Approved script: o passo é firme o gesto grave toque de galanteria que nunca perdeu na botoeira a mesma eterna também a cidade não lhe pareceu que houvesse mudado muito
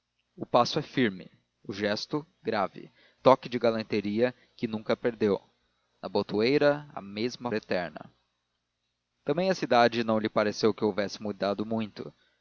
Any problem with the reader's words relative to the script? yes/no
no